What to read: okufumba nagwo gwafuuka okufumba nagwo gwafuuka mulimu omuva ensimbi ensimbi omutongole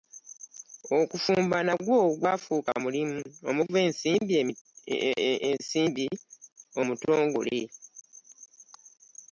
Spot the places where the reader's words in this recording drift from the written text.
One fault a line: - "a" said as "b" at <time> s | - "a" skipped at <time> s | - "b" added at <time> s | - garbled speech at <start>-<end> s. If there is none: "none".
- "okufumba nagwo gwafuuka" skipped at 2.7 s
- "ensimbi" skipped at 6.1 s